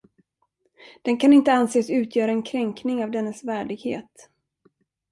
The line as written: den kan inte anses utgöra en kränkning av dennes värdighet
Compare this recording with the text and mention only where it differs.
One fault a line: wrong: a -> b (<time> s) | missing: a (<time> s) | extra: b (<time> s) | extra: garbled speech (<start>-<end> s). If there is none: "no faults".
no faults